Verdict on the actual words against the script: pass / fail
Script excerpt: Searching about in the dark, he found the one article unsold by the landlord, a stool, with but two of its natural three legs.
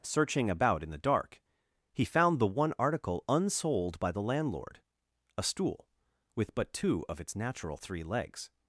pass